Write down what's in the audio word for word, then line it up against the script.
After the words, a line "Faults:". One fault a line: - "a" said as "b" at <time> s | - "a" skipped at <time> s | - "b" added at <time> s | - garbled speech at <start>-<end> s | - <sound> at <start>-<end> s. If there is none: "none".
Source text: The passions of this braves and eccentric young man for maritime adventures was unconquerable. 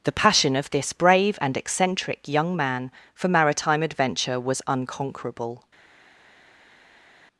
The passion of this brave and eccentric young man for maritime adventure was unconquerable.
Faults:
- "passions" said as "passion" at 0.1 s
- "braves" said as "brave" at 0.9 s
- "adventures" said as "adventure" at 3.8 s